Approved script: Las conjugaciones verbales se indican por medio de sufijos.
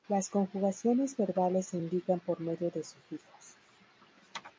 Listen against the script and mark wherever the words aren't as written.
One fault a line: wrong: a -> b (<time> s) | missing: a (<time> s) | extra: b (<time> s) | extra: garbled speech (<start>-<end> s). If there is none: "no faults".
no faults